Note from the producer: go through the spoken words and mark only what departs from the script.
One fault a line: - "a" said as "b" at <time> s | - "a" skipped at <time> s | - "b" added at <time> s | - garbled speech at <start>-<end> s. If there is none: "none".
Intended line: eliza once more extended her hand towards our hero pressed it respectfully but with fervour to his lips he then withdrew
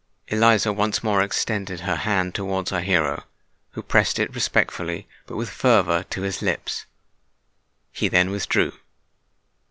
- "who" added at 3.7 s